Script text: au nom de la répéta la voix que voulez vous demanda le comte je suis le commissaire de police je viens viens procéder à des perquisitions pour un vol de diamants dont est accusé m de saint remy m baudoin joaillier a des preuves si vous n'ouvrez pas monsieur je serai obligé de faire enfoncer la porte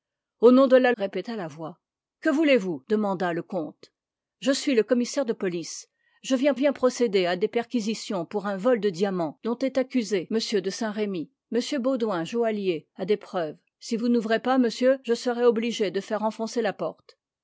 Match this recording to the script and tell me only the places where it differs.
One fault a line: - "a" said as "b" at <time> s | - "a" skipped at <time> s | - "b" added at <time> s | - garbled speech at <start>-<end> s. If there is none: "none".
none